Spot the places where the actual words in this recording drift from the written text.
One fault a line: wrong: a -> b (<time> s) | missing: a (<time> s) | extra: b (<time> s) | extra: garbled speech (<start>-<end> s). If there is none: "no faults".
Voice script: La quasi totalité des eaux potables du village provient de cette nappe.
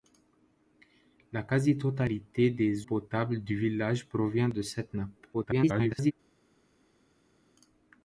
missing: eaux (2.9 s)
extra: garbled speech (5.3-6.1 s)